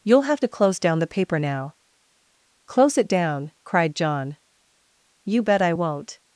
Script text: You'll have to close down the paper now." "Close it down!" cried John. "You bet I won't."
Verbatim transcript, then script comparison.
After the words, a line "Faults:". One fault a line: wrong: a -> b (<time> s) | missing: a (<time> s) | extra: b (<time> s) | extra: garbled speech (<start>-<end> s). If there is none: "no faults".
You'll have to close down the paper now." "Close it down!" cried John. "You bet I won't."
Faults:
no faults